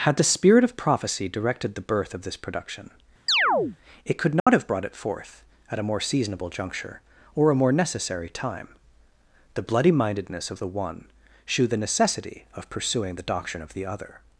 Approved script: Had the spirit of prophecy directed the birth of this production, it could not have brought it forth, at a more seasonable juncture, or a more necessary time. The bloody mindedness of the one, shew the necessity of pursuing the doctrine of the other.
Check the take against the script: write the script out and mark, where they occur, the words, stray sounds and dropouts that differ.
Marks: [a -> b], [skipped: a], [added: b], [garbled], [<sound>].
Had the spirit of prophecy directed the birth of this production, [chirp] it could not [dropout] have brought it forth, at a more seasonable juncture, or a more necessary time. The bloody mindedness of the one, shew the necessity of pursuing the doctrine of the other.